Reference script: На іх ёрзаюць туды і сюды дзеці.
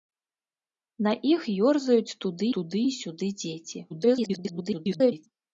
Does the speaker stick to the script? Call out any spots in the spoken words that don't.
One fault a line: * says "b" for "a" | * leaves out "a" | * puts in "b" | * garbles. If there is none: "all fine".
* puts in "туды"
* garbles